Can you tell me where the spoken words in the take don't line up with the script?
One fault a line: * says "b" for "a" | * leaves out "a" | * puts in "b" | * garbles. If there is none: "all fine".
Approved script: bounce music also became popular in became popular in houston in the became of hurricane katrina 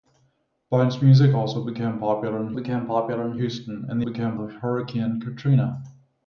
all fine